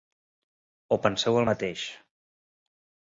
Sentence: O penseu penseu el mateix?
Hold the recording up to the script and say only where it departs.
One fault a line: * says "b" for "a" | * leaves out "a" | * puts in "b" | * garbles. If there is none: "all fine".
* leaves out "penseu"